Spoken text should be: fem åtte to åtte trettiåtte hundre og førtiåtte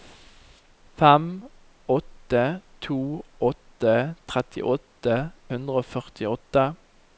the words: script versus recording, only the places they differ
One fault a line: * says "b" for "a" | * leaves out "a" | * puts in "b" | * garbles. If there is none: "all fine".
all fine